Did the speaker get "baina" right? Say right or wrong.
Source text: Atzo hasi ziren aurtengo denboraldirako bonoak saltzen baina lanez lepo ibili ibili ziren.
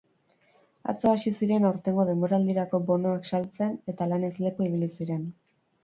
wrong